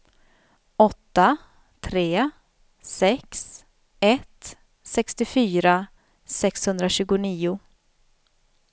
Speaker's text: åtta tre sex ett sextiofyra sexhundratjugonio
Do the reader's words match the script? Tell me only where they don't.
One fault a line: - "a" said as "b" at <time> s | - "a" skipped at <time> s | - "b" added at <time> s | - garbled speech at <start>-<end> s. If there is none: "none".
none